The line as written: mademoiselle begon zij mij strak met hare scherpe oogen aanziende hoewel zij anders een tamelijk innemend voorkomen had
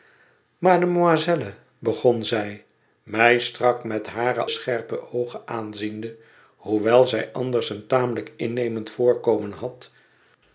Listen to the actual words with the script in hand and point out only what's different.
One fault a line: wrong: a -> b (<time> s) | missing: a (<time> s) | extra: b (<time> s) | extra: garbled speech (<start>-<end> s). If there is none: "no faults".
no faults